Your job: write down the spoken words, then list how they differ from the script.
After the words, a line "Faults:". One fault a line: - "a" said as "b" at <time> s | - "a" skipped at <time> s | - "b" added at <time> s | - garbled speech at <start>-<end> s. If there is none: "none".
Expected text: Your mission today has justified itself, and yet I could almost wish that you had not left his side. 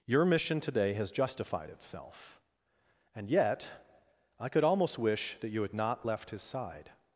Your mission today has justified itself, and yet I could almost wish that you had not left his side.
Faults:
none